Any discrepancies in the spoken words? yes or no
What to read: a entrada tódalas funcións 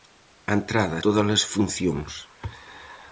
no